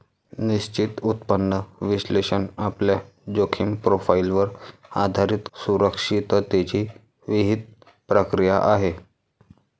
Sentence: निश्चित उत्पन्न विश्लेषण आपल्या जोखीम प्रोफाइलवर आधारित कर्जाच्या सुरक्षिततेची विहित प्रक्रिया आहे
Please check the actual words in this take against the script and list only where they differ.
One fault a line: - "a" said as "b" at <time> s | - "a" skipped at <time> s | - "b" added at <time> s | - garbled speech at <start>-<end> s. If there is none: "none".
- "कर्जाच्या" skipped at 5.5 s